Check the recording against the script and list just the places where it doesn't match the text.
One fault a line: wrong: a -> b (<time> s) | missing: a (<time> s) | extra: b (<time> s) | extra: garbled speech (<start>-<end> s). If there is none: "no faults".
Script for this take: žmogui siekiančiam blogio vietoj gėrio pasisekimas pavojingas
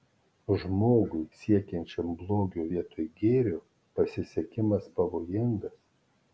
no faults